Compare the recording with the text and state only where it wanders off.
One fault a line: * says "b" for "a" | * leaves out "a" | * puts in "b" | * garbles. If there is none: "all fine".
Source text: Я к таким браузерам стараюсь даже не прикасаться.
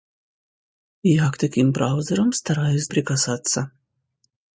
* leaves out "даже не"